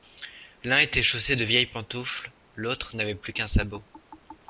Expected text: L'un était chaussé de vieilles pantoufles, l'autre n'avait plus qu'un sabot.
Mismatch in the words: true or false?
false